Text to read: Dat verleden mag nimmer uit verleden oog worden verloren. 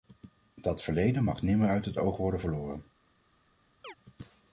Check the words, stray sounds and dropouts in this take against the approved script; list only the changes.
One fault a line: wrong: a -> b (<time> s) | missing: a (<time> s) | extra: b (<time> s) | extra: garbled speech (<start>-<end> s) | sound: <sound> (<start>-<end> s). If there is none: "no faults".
wrong: verleden -> het (1.9 s)
sound: chirp (3.8-3.9 s)